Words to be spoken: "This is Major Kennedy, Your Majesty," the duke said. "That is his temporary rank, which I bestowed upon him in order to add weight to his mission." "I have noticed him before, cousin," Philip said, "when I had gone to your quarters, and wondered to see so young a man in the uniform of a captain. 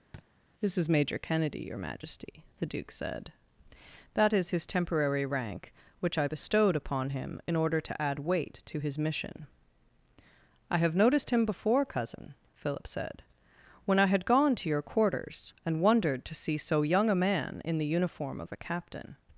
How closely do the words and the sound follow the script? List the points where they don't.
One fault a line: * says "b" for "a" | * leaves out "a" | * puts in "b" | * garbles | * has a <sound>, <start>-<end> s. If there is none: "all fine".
* has a thud, 0.1-0.3 s